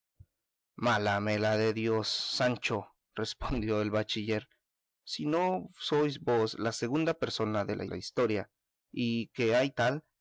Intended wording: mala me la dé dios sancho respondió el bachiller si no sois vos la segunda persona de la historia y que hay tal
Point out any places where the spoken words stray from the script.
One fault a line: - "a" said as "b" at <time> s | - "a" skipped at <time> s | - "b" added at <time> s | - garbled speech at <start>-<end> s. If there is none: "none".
- "la" added at 7.8 s